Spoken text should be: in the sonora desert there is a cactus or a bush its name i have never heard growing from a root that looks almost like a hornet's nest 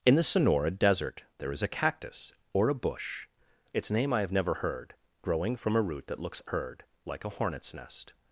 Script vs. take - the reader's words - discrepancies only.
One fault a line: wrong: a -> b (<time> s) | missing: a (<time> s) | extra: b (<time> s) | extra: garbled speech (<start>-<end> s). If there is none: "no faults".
wrong: almost -> heard (6.4 s)